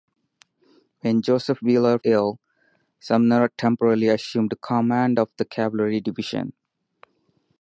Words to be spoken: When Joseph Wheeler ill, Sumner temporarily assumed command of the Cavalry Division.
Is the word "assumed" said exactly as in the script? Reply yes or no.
yes